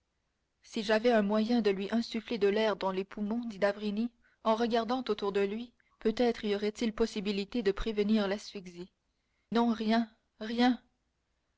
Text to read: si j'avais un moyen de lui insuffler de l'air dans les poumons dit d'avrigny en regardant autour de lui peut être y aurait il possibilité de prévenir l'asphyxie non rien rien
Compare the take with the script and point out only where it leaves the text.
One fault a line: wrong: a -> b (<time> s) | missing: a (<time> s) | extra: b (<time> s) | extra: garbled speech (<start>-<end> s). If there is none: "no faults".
no faults